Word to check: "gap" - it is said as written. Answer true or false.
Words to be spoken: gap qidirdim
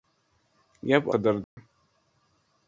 true